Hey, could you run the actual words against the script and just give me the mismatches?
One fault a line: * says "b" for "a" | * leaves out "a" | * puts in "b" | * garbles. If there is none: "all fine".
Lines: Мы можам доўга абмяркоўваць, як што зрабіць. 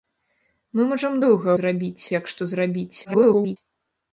* says "зрабіць" for "абмяркоўваць"
* garbles